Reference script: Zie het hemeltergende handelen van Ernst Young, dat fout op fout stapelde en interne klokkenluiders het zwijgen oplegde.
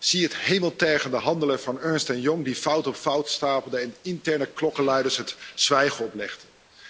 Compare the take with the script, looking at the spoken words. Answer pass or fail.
pass